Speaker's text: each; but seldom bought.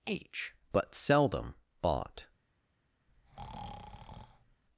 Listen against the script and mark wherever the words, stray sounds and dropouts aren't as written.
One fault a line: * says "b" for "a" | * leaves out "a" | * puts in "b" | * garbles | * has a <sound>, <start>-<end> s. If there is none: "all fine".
* says "h" for "each"
* has a breath, 3.1-4.6 s